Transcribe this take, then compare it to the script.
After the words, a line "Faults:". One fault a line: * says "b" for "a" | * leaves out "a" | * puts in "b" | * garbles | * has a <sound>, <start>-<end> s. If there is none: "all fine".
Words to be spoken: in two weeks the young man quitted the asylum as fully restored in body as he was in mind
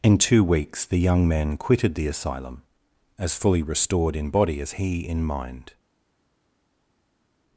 in two weeks the young man quitted the asylum as fully restored in body as he in mind
Faults:
* leaves out "was"